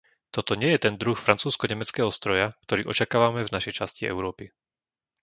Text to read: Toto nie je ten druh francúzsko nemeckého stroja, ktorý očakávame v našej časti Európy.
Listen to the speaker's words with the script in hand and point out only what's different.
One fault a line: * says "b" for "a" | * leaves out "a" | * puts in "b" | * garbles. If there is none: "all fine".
all fine